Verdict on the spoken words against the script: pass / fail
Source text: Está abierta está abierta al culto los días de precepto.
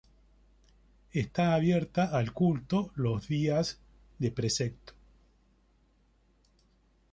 fail